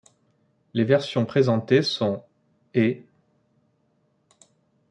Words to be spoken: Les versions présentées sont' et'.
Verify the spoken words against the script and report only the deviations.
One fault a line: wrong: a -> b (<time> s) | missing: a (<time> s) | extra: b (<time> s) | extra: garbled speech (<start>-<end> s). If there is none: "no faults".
no faults